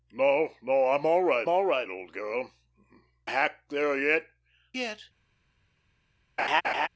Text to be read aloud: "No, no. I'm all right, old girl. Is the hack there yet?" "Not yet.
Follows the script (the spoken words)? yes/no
no